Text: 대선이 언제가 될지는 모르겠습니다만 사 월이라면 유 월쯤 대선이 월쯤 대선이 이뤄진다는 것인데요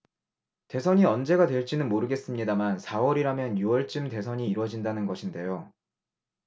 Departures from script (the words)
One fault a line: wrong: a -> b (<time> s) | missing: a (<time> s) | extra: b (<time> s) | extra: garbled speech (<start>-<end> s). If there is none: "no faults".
missing: 월쯤 대선이 (4.5 s)